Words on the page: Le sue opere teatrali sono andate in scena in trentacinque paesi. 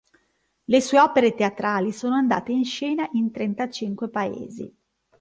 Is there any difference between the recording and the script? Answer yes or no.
no